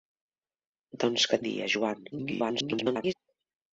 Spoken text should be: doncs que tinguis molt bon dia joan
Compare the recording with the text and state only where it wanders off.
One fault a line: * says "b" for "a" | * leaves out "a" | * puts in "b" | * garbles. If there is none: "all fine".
* leaves out "tinguis molt bon"
* garbles